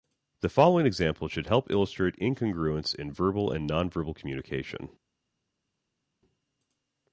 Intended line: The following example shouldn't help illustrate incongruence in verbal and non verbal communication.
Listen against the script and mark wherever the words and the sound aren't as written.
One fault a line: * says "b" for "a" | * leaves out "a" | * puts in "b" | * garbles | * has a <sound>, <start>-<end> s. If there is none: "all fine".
* says "should" for "shouldn't"